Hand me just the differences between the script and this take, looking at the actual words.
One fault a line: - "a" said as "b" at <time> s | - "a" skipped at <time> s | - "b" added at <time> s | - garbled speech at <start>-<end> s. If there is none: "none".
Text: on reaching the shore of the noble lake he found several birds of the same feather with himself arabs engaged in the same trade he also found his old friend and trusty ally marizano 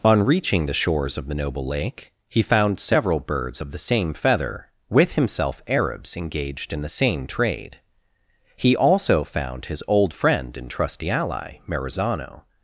- "shore" said as "shores" at 0.7 s